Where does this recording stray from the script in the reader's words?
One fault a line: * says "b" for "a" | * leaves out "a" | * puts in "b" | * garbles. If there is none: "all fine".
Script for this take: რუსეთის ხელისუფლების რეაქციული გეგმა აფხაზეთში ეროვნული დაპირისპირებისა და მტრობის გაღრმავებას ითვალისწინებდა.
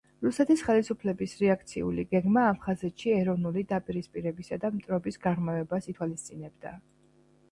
all fine